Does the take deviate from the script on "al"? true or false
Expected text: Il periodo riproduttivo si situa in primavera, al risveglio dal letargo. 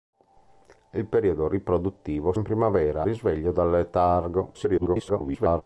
true